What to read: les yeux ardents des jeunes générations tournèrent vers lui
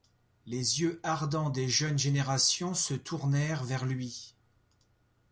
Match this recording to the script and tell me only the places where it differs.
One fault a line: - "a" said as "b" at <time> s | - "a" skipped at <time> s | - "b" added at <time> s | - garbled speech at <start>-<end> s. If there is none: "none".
- "se" added at 2.7 s